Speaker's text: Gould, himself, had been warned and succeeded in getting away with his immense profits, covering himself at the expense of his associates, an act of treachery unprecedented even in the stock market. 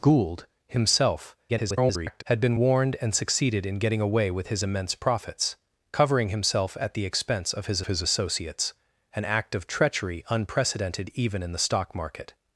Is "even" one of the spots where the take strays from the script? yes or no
no